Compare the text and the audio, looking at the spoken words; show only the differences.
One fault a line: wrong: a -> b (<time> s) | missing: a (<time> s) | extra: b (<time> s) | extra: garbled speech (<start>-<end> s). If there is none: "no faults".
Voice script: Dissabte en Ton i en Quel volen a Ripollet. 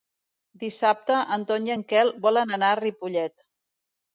extra: anar (2.6 s)